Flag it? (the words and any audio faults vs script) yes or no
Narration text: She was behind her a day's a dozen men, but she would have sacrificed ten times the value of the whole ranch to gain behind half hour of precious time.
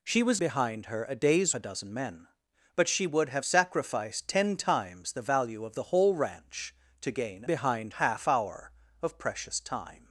no